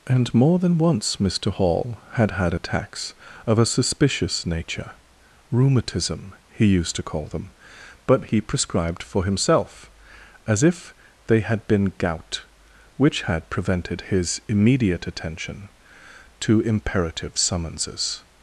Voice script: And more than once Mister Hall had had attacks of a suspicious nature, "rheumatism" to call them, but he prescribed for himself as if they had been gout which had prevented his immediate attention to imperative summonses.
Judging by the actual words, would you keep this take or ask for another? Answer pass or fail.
fail